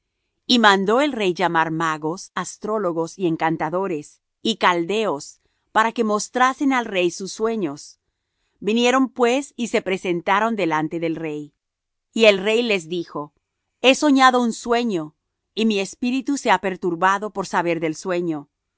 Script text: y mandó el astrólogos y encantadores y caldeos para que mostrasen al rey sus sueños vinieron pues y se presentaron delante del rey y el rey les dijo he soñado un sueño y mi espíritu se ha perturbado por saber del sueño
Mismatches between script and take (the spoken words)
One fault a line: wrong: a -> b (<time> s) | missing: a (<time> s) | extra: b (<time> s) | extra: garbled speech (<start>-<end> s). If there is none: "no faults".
extra: rey llamar magos (1.1 s)